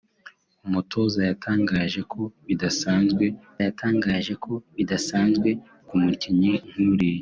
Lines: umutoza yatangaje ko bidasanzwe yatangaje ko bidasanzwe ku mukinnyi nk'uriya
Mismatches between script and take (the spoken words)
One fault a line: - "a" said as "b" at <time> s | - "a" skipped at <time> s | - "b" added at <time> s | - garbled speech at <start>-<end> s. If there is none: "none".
none